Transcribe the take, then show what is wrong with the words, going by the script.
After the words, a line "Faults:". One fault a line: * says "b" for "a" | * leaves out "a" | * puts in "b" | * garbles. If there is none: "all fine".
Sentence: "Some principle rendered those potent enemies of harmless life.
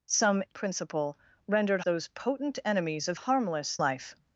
"Some principle rendered those potent enemies of harmless life.
Faults:
all fine